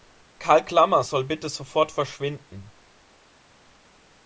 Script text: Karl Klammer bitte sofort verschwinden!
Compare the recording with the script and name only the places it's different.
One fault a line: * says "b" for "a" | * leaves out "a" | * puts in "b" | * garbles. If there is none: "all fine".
* puts in "soll"